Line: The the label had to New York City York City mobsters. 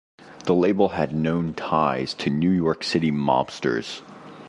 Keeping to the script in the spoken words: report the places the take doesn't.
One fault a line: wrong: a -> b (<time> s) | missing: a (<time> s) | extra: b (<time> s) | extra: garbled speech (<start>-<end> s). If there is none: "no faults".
missing: the (0.6 s)
extra: known ties (1.1 s)
missing: York City (3.1 s)